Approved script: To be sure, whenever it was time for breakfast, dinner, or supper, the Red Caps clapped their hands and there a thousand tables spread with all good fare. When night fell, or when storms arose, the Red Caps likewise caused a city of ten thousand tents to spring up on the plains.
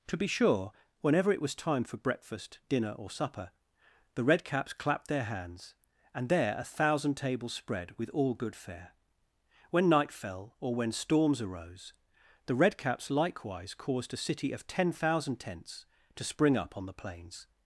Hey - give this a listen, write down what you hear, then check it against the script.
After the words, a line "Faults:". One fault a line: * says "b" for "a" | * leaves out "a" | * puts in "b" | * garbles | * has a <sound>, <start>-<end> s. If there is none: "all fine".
To be sure, whenever it was time for breakfast, dinner, or supper, the Red Caps clapped their hands and there a thousand tables spread with all good fare. When night fell, or when storms arose, the Red Caps likewise caused a city of ten thousand tents to spring up on the plains.
Faults:
all fine